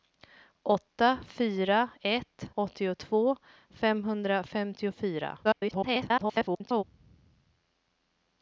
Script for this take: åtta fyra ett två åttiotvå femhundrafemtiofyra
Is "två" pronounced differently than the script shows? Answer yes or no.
yes